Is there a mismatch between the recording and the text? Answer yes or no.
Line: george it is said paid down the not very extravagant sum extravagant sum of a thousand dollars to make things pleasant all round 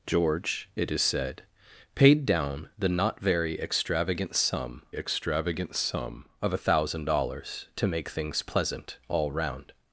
no